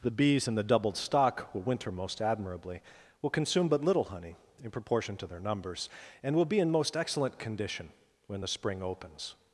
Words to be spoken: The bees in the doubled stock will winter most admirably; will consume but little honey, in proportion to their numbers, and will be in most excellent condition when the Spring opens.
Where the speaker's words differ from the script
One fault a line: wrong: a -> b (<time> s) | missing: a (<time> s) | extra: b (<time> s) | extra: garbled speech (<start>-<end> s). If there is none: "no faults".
no faults